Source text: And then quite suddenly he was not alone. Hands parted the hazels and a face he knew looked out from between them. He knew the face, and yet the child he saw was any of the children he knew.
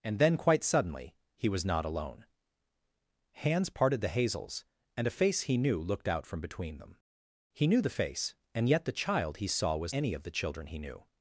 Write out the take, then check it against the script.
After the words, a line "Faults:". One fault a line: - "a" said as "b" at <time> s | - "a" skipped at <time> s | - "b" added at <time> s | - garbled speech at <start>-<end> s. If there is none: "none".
And then quite suddenly he was not alone. Hands parted the hazels and a face he knew looked out from between them. He knew the face, and yet the child he saw was any of the children he knew.
Faults:
none